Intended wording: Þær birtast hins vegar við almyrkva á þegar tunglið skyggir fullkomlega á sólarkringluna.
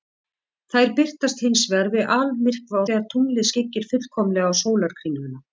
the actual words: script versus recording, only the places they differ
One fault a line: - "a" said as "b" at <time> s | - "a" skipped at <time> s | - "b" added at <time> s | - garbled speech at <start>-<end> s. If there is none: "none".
none